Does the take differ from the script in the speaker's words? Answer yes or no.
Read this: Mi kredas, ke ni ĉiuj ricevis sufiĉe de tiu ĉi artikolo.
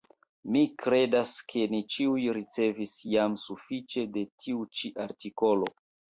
yes